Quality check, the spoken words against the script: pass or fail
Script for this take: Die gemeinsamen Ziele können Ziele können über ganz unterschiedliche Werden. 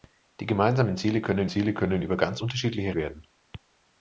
pass